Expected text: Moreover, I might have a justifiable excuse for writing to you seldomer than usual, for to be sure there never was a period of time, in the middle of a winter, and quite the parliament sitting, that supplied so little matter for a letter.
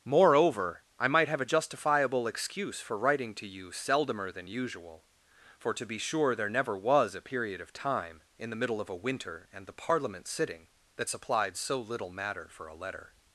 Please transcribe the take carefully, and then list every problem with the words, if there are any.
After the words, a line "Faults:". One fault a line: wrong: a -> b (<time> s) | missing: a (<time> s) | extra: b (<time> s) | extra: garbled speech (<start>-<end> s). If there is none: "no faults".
Moreover, I might have a justifiable excuse for writing to you seldomer than usual, for to be sure there never was a period of time, in the middle of a winter, and the parliament sitting, that supplied so little matter for a letter.
Faults:
missing: quite (9.7 s)